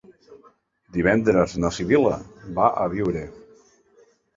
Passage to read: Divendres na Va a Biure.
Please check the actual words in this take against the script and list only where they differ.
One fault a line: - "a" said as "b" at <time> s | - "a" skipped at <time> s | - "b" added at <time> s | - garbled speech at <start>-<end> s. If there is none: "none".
- "Sibil·la" added at 1.8 s